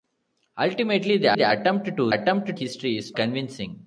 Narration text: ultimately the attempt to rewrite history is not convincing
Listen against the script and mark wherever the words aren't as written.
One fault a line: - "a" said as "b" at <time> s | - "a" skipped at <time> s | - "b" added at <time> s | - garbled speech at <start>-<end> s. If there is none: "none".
- "the" added at 1.3 s
- "rewrite" said as "attempt" at 2.1 s
- "not" skipped at 3.2 s